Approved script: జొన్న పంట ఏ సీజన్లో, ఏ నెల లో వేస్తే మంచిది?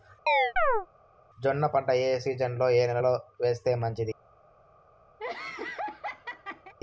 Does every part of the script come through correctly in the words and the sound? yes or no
no